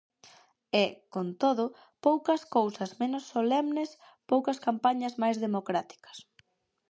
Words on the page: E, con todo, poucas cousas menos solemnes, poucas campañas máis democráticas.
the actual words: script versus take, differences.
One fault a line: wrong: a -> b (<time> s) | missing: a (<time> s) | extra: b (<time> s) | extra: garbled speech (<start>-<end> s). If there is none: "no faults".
no faults